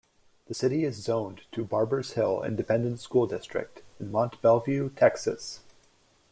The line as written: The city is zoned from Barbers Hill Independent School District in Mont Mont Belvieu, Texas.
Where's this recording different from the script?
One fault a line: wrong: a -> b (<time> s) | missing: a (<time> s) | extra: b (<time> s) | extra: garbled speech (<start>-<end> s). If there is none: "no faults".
wrong: from -> to (1.5 s)
missing: Mont (4.4 s)